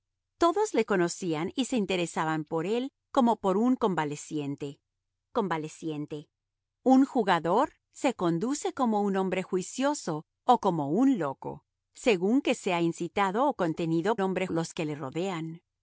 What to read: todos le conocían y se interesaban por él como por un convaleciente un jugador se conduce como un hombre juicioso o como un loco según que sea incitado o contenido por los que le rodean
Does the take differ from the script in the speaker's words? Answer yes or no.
yes